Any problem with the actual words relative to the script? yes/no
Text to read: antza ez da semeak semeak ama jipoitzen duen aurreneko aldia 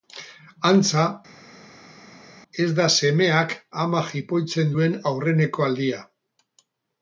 yes